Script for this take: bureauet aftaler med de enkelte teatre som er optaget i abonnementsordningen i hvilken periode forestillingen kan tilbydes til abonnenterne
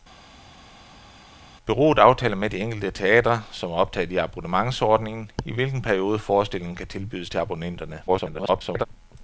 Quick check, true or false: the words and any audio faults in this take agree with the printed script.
false